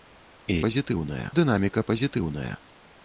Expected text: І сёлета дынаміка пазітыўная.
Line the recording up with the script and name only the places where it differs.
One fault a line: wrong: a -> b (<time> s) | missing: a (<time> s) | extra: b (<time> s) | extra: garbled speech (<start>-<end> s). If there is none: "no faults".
wrong: сёлета -> пазітыўная (0.7 s)